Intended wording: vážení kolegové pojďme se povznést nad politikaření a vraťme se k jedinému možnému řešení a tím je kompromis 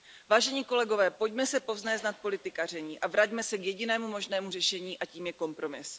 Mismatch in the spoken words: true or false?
false